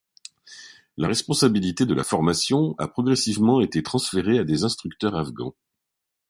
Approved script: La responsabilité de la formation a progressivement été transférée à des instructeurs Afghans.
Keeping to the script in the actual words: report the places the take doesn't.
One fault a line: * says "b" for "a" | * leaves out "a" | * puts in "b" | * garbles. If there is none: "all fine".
all fine